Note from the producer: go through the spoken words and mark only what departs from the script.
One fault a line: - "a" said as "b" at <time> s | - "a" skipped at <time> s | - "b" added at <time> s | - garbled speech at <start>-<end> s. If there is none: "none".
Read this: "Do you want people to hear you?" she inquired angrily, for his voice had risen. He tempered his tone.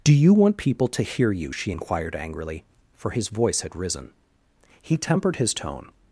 none